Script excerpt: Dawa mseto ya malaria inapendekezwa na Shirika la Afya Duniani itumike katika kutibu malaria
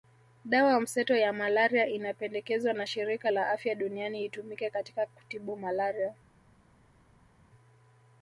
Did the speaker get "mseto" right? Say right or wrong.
right